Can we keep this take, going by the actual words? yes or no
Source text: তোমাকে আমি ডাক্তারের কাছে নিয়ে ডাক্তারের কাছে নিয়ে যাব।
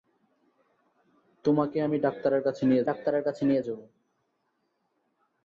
yes